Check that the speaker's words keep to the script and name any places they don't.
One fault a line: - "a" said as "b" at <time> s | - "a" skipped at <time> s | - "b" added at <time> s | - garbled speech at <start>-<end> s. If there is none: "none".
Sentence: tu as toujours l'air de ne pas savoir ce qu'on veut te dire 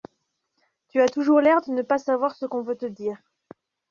none